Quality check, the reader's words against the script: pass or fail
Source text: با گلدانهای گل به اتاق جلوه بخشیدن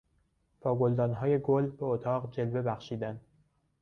pass